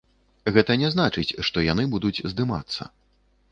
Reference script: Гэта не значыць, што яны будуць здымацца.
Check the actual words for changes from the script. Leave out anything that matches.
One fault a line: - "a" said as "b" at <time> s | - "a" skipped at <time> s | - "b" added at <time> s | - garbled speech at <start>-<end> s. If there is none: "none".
none